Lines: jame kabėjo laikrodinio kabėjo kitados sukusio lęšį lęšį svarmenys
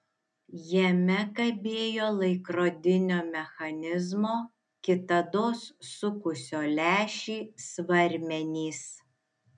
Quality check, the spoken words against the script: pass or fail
fail